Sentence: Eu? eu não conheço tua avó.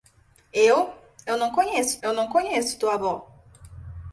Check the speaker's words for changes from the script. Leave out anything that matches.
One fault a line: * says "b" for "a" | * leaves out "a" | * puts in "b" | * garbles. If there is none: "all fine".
* puts in "eu não conheço"